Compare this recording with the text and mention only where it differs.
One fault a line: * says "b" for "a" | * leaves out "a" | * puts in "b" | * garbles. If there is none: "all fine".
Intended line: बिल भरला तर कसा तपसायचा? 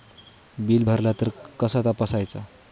all fine